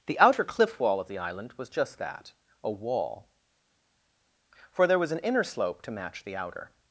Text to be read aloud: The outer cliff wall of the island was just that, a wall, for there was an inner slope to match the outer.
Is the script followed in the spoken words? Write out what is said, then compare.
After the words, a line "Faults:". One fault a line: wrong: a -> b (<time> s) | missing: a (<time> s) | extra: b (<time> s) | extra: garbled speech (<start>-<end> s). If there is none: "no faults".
The outer cliff wall of the island was just that, a wall, for there was an inner slope to match the outer.
Faults:
no faults